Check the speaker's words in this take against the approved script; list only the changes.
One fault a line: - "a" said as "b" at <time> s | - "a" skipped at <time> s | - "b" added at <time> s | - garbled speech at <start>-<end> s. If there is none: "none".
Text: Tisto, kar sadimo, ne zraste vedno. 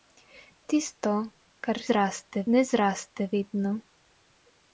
- "sadimo" said as "zraste" at 1.9 s